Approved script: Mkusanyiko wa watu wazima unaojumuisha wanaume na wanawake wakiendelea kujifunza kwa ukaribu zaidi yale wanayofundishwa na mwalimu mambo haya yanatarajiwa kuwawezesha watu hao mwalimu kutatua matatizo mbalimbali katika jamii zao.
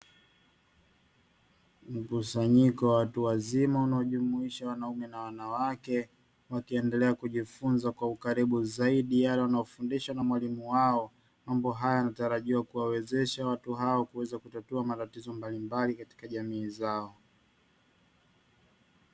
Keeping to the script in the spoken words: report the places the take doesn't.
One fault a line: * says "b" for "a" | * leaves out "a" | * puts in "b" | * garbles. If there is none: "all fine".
* puts in "wao"
* says "kuweza" for "mwalimu"